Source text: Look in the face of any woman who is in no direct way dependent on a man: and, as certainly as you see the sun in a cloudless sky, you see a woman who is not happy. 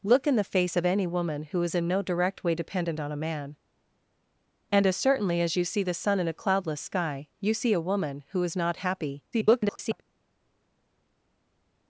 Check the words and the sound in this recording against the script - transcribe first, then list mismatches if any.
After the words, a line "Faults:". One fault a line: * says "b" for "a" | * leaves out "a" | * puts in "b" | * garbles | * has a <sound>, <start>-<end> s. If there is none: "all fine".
Look in the face of any woman who is in no direct way dependent on a man: and, as certainly as you see the sun in a cloudless sky, you see a woman who is not happy. [garbled]
Faults:
* garbles